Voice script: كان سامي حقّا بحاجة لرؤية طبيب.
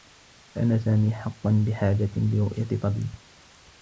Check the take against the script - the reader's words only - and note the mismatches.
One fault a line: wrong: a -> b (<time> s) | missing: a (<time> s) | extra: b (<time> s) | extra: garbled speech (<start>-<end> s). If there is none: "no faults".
no faults